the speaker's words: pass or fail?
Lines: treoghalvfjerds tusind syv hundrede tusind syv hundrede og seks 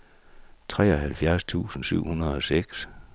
fail